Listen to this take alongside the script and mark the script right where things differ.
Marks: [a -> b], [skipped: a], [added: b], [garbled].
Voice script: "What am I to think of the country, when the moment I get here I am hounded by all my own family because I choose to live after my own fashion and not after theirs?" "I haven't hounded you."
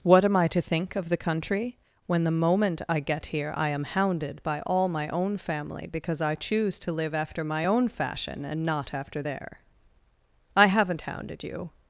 "What am I to think of the country, when the moment I get here I am hounded by all my own family because I choose to live after my own fashion and not after [theirs?" -> their] "I haven't hounded you."